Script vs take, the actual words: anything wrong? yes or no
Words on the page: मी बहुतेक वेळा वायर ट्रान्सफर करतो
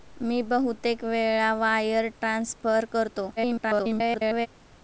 yes